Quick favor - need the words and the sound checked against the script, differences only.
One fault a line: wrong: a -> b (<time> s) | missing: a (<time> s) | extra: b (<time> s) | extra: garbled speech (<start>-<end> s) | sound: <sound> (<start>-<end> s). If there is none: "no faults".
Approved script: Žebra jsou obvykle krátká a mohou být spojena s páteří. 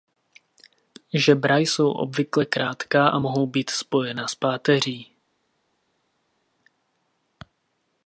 no faults